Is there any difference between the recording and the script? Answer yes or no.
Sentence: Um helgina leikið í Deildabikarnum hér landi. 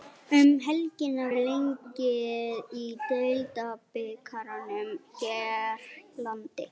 no